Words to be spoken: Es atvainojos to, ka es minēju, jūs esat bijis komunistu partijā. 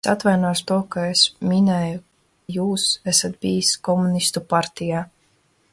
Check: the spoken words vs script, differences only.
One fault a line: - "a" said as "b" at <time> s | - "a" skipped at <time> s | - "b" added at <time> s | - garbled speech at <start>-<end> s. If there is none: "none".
none